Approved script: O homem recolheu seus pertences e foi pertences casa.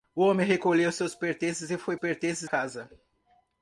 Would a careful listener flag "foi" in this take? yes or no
no